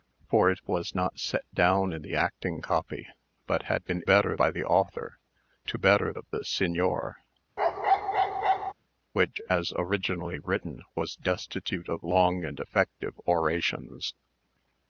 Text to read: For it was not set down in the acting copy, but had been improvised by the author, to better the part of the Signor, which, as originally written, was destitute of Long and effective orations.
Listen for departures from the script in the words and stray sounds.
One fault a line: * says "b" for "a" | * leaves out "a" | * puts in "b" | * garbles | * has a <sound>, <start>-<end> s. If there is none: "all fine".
* says "better" for "improvised"
* leaves out "the part"
* has a bark, 7.6-8.7 s